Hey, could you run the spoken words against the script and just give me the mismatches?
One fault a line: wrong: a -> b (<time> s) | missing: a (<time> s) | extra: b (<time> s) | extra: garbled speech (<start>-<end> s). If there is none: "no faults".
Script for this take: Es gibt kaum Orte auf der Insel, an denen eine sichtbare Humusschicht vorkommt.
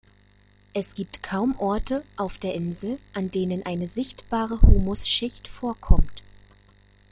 no faults